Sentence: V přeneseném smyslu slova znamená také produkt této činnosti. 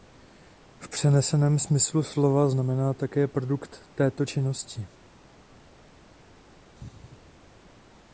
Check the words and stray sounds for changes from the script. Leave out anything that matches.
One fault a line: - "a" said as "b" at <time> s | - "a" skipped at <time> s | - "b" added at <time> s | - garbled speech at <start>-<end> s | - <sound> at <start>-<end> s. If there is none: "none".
none